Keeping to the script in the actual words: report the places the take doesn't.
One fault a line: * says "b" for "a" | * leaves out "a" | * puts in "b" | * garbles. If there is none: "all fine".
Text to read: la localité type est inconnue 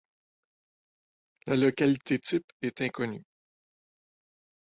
all fine